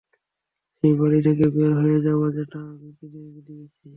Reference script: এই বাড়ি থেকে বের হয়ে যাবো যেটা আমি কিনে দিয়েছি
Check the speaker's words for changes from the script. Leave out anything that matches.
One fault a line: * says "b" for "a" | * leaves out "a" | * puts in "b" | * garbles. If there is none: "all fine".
* says "সেই" for "এই"